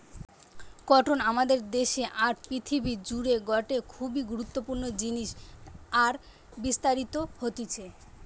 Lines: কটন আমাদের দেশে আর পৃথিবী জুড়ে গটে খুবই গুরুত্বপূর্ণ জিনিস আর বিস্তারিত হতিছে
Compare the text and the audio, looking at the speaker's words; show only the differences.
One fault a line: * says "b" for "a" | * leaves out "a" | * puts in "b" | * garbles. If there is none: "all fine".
all fine